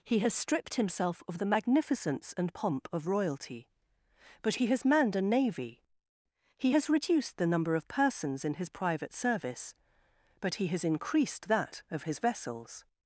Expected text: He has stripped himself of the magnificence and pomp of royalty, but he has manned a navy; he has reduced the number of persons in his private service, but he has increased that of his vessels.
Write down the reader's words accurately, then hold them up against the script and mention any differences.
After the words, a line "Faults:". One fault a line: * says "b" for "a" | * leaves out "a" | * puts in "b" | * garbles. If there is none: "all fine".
He has stripped himself of the magnificence and pomp of royalty, but he has manned a navy; he has reduced the number of persons in his private service, but he has increased that of his vessels.
Faults:
all fine